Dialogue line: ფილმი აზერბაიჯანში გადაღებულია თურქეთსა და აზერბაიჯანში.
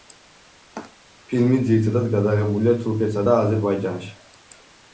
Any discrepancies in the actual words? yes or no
yes